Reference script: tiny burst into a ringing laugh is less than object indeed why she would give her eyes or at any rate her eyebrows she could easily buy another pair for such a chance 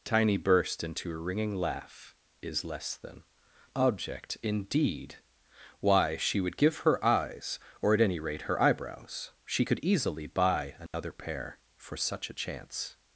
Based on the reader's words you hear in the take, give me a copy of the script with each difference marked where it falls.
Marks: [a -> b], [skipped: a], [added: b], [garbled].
tiny burst into a ringing laugh is less than object indeed why she would give her eyes or at any rate her eyebrows she could easily buy another pair for such a chance